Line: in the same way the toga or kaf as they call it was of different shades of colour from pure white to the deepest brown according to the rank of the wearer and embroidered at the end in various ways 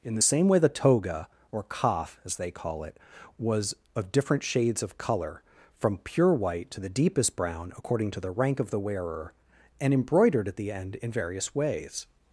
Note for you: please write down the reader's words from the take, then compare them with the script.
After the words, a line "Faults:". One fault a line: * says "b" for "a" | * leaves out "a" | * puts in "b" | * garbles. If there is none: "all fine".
in the same way the toga or kaf as they call it was of different shades of colour from pure white to the deepest brown according to the rank of the wearer and embroidered at the end in various ways
Faults:
all fine